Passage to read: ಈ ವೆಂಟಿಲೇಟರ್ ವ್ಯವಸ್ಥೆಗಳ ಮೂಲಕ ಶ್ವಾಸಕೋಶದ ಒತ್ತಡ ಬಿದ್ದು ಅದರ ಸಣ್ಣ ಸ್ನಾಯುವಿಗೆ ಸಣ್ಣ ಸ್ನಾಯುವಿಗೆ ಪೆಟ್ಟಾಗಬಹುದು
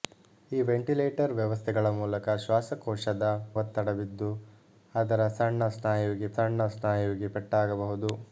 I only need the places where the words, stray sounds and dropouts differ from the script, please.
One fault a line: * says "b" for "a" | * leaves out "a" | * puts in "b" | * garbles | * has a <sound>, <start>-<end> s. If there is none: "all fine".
all fine